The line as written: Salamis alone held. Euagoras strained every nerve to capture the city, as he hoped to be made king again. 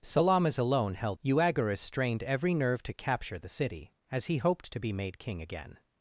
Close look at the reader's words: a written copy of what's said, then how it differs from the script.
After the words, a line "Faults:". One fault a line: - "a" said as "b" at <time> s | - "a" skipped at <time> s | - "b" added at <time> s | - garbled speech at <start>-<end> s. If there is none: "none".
Salamis alone held. Euagoras strained every nerve to capture the city, as he hoped to be made king again.
Faults:
none